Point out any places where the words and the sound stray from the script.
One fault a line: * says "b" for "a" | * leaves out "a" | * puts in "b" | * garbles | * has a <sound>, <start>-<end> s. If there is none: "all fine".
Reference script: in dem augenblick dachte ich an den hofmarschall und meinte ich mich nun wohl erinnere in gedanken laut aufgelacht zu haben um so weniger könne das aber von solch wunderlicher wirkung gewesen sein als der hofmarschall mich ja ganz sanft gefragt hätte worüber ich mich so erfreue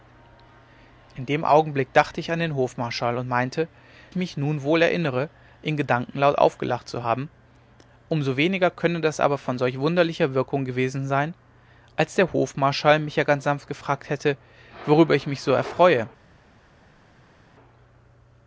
all fine